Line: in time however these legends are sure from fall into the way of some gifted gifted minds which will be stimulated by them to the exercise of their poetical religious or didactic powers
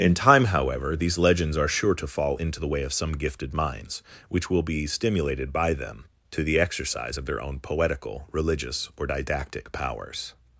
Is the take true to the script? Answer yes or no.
no